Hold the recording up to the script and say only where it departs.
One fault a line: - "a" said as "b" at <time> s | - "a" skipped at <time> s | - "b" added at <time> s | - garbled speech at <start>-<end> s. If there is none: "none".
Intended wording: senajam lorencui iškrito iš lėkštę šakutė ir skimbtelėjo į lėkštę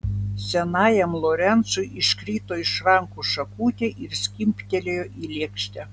- "lėkštę" said as "rankų" at 2.9 s